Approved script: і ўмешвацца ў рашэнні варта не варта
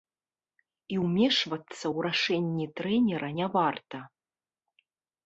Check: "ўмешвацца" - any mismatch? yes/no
no